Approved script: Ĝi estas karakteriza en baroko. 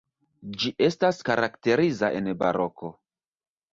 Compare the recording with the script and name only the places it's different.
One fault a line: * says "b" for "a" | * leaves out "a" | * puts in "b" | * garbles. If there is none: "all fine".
all fine